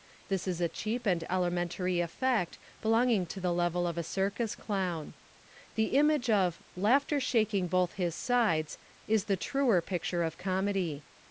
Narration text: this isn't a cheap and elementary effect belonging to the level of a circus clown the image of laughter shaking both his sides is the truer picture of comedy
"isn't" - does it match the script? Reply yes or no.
no